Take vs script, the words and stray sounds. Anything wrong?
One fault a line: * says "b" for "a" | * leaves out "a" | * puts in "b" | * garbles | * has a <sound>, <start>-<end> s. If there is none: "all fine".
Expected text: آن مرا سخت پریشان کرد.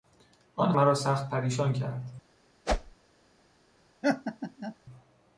* has a whoosh, 2.7-3.0 s
* has a laugh, 4.0-4.8 s